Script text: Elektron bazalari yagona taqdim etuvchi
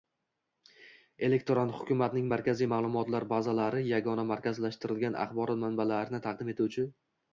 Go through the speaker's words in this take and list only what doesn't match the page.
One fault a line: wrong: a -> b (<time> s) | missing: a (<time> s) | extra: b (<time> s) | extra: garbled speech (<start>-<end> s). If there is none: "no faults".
extra: hukumatning markaziy ma'lumotlar (1.8 s)
extra: markazlashtirilgan axborot manbalarini (4.3 s)